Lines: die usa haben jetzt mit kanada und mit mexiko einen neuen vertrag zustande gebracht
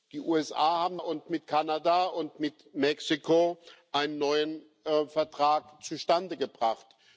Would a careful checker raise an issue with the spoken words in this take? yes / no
yes